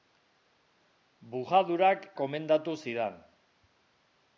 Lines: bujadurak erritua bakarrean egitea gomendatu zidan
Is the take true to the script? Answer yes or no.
no